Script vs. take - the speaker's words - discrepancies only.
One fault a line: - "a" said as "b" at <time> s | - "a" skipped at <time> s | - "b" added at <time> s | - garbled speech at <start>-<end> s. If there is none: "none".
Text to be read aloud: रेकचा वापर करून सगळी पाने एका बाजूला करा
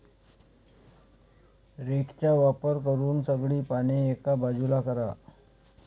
none